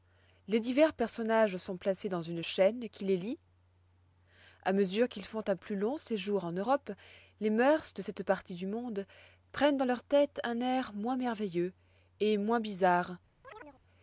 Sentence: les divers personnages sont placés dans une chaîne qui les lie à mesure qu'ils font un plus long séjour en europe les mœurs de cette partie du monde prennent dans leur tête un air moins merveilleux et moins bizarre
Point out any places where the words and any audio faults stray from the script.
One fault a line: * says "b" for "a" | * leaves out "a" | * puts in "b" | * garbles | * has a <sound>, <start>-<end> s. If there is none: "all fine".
* has a chirp, 13.4-13.8 s